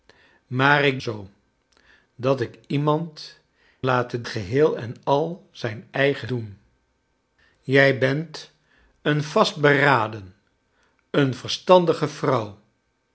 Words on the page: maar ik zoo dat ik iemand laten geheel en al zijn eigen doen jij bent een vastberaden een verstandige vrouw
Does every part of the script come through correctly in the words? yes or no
yes